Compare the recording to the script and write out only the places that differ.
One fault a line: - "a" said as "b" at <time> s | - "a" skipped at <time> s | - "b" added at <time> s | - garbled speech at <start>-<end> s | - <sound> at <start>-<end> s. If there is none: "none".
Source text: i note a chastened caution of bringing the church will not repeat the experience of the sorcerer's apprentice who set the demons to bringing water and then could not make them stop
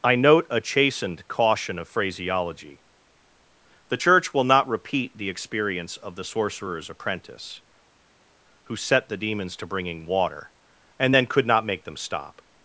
- "bringing" said as "phraseology" at 1.9 s